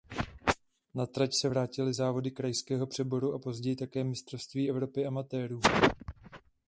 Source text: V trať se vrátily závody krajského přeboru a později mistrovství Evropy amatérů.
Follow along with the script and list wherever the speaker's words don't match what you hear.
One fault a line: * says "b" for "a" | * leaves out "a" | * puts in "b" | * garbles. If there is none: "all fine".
* says "Na" for "V"
* puts in "také"